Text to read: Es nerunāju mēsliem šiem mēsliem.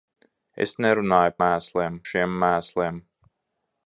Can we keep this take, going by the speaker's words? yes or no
yes